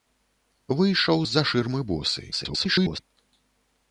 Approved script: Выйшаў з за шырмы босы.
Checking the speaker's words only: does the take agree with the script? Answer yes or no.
no